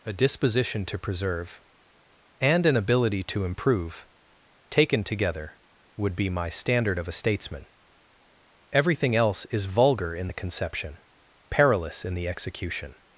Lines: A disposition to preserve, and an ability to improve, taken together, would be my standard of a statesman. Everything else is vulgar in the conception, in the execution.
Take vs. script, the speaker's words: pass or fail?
fail